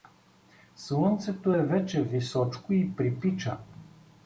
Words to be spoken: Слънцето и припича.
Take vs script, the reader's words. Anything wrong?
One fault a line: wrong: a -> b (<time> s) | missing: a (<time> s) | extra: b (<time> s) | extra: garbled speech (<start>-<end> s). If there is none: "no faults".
extra: е вече височко (1.5 s)